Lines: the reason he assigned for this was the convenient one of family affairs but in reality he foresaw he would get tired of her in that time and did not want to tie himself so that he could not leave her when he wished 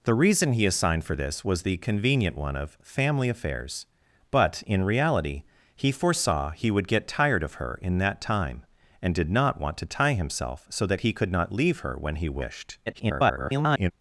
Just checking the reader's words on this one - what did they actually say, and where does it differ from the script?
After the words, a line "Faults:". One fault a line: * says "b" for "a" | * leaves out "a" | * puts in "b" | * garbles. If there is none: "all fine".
the reason he assigned for this was the convenient one of family affairs but in reality he foresaw he would get tired of her in that time and did not want to tie himself so that he could not leave her when he wished [garbled]
Faults:
* garbles